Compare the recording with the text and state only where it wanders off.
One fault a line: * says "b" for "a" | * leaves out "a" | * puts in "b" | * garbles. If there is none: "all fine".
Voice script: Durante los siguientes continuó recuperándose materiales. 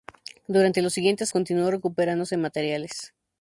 all fine